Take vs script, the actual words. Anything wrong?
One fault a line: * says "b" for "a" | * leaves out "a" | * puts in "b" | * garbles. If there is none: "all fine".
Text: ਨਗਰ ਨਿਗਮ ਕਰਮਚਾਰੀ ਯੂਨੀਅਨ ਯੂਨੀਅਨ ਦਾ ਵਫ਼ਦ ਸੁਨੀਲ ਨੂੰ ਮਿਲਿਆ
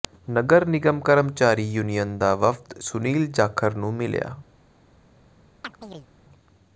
* leaves out "ਯੂਨੀਅਨ"
* puts in "ਜਾਖੜ"